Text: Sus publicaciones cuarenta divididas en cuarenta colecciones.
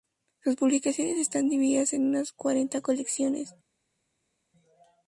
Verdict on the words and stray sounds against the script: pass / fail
fail